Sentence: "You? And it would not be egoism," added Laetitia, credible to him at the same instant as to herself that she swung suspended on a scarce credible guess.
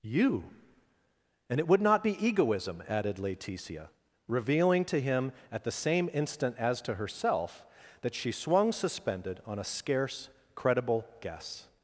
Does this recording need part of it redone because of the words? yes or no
yes